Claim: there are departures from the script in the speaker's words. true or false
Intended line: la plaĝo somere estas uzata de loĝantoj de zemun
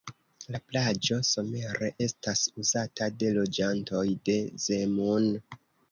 false